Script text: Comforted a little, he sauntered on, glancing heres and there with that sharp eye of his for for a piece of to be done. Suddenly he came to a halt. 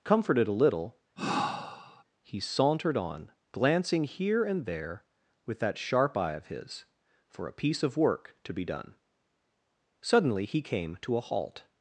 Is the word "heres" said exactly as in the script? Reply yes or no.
no